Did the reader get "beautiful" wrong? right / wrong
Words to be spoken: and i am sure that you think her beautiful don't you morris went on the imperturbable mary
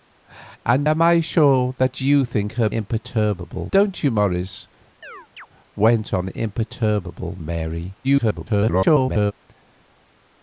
wrong